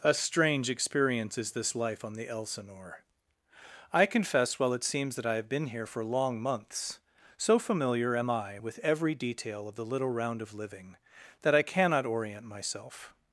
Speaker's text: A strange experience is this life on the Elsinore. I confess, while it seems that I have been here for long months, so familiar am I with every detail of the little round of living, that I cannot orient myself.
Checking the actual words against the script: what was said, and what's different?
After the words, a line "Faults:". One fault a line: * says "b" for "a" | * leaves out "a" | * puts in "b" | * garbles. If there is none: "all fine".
A strange experience is this life on the Elsinore. I confess, while it seems that I have been here for long months, so familiar am I with every detail of the little round of living, that I cannot orient myself.
Faults:
all fine